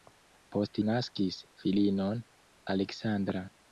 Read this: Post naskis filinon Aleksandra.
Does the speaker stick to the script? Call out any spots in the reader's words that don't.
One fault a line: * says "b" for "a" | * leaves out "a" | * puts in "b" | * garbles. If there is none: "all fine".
all fine